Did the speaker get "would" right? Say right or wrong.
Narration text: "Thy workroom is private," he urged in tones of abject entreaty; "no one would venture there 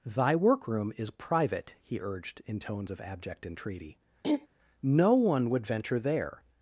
right